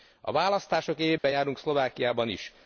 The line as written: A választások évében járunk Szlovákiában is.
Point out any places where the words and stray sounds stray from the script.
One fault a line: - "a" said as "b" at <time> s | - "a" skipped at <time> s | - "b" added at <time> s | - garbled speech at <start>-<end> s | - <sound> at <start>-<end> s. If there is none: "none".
- dropout at 1.2-1.2 s